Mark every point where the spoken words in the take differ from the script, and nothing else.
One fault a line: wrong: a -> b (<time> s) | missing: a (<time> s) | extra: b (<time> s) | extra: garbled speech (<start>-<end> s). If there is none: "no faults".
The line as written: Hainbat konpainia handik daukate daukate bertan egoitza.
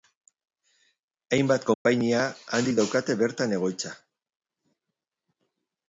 missing: daukate (3.2 s)